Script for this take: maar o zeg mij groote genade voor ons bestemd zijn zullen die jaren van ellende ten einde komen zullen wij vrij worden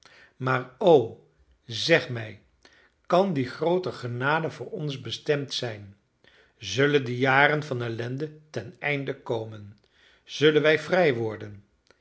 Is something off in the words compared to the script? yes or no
yes